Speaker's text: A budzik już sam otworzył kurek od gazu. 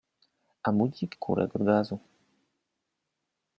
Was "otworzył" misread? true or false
true